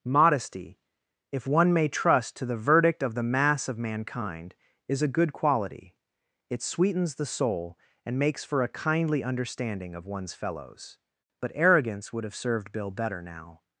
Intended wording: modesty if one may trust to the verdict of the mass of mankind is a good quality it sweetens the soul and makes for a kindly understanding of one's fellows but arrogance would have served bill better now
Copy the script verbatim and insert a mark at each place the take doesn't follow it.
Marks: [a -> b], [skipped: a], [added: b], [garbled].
modesty if one may trust to the verdict of the mass of mankind is a good quality it sweetens the soul and makes for a kindly understanding of one's fellows but arrogance would have served bill better now